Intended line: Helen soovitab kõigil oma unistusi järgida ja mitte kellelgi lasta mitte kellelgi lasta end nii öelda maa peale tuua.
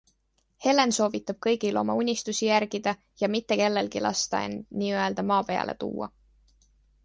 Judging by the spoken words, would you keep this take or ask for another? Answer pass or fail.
fail